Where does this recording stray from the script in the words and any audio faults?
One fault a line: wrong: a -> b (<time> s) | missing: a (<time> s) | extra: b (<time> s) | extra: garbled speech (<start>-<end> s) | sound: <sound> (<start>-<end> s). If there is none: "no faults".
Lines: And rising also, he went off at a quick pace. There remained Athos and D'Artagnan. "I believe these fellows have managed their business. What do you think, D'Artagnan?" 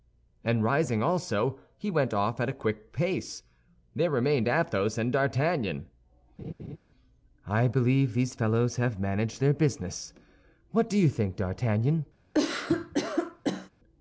sound: laugh (6.4-6.8 s)
sound: cough (12.3-13.7 s)